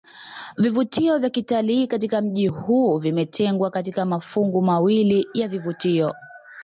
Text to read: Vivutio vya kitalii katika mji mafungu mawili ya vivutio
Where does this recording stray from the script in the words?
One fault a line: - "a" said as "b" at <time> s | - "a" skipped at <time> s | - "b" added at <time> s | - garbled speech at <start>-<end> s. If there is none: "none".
- "huu vimetengwa katika" added at 2.5 s